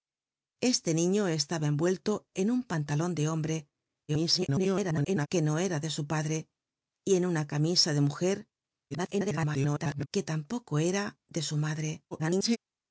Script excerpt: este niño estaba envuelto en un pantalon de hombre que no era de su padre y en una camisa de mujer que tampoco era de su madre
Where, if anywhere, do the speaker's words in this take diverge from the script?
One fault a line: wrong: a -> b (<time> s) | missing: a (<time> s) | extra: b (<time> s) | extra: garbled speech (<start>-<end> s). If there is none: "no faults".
extra: garbled speech (4.1-5.3 s)
extra: garbled speech (8.9-10.1 s)
extra: garbled speech (12.1-12.6 s)